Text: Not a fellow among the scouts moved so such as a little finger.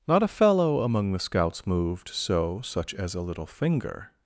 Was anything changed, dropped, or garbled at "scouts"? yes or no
no